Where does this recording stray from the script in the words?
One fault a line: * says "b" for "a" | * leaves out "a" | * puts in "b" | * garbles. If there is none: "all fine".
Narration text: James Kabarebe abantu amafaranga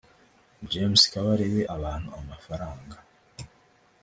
all fine